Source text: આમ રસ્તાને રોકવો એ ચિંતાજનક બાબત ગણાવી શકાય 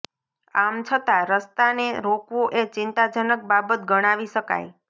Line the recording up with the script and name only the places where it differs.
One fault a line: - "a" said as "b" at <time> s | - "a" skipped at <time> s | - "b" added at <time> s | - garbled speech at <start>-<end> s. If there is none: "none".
- "છતાં" added at 0.8 s